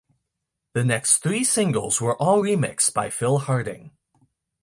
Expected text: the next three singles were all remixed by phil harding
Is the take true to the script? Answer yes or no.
yes